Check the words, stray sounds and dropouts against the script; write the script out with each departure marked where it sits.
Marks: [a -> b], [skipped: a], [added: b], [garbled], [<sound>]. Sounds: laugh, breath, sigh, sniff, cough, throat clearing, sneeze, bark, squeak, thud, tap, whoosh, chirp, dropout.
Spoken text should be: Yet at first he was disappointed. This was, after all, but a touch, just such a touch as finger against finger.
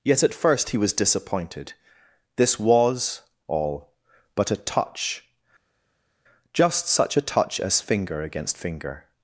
Yet at first he was disappointed. This was, [skipped: after] all, but a touch, just such a touch as finger against finger.